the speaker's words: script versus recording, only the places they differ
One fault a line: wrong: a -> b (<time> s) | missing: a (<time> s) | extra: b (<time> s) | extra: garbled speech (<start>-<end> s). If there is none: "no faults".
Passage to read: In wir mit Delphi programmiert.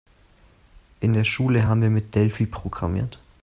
extra: der Schule haben (1.1 s)